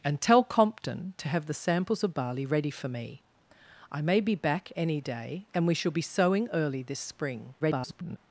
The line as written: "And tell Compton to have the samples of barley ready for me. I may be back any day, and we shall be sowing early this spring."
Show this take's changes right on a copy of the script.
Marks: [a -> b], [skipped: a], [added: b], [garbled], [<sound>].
"And tell Compton to have the samples of barley ready for me. I may be back any day, and we shall be sowing early this spring." [garbled]